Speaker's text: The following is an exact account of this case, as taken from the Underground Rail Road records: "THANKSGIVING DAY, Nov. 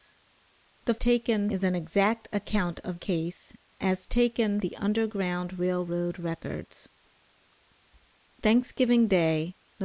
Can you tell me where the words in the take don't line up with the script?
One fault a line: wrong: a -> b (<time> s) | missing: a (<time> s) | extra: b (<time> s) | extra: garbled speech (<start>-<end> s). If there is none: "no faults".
wrong: following -> taken (1.0 s)
missing: this (3.0 s)
missing: from (4.6 s)